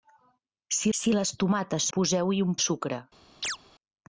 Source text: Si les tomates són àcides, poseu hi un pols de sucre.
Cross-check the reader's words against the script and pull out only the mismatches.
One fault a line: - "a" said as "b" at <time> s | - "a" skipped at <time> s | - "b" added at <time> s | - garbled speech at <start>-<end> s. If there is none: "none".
- "si" added at 1.0 s
- "són àcides" skipped at 1.9 s
- "pols" skipped at 2.6 s